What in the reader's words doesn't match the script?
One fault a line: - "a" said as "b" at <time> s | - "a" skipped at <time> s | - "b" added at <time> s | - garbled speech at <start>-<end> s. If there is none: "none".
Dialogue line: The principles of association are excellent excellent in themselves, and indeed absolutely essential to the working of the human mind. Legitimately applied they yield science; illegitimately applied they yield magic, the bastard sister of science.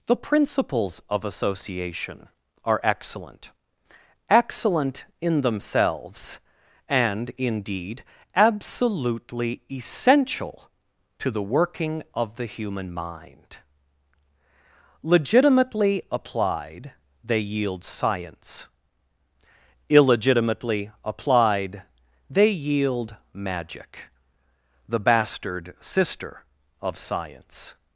none